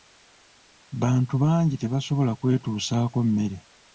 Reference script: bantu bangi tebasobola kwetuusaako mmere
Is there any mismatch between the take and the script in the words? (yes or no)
no